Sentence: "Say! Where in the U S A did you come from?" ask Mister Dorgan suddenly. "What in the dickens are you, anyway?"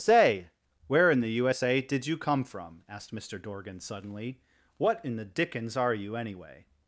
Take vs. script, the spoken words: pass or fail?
fail